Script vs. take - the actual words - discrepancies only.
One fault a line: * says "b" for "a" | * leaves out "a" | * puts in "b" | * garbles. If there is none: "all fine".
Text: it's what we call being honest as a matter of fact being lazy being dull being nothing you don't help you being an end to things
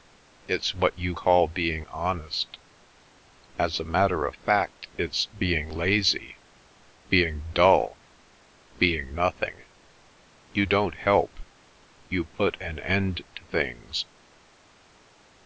* says "you" for "we"
* puts in "it's"
* says "put" for "being"